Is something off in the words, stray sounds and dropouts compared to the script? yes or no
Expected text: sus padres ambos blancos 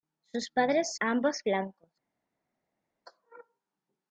no